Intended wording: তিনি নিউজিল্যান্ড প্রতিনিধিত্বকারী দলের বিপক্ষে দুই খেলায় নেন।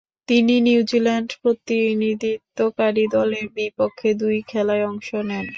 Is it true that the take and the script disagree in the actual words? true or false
true